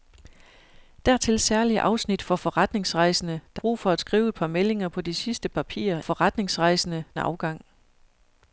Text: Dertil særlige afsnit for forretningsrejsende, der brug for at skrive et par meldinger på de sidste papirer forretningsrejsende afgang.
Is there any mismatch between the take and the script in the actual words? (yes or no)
no